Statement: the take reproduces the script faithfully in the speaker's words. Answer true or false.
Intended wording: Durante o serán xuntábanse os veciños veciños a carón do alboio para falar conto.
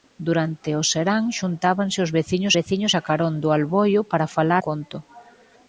true